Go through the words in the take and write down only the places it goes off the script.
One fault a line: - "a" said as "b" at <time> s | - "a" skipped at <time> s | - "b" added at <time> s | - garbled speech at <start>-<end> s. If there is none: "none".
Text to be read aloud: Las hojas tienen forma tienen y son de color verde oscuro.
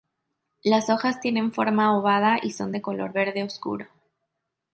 - "tienen" said as "ovada" at 1.9 s